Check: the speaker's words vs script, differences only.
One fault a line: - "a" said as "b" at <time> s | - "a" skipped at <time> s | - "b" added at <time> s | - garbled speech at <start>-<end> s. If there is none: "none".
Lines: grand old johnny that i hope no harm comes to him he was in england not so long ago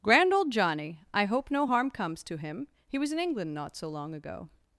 - "that" skipped at 1.0 s